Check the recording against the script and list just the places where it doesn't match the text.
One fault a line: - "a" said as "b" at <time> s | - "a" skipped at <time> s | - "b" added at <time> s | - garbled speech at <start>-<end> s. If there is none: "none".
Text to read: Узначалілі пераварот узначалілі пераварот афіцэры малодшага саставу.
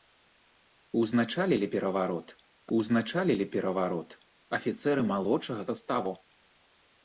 none